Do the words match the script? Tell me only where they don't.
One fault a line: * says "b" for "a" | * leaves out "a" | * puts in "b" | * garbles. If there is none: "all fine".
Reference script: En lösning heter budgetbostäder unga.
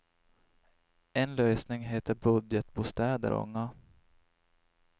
all fine